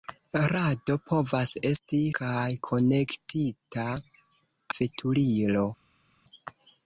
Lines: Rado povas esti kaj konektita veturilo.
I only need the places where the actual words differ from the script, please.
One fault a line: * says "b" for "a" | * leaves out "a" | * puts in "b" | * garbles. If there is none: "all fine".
all fine